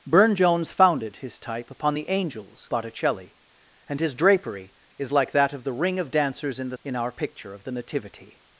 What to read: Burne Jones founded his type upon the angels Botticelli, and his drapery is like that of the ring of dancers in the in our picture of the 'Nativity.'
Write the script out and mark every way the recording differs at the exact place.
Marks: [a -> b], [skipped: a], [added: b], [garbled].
Burne Jones founded his type upon the angels Botticelli, and his drapery is like that of the ring of dancers in the in our picture of the 'Nativity.'